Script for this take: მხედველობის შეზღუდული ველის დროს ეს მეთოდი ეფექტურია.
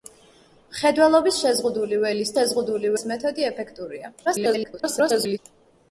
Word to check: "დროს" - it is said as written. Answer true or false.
false